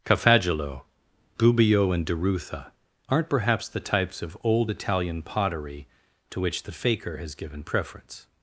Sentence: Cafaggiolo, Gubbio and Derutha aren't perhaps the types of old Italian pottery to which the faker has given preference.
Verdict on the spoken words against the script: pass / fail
pass